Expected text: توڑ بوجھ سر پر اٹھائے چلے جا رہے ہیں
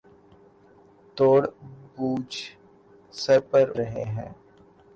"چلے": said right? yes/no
no